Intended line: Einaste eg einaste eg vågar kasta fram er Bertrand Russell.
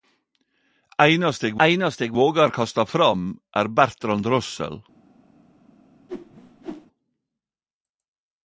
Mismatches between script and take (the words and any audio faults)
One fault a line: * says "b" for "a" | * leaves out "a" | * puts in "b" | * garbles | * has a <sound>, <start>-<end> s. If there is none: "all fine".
* has a whoosh, 6.1-6.9 s